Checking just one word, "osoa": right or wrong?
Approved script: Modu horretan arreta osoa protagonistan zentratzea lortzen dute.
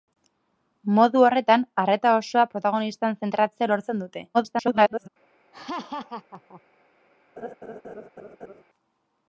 right